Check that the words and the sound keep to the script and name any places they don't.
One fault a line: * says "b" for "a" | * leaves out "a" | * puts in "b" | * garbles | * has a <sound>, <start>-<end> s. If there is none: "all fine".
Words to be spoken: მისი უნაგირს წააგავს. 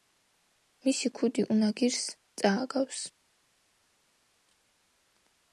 * puts in "ქუდი"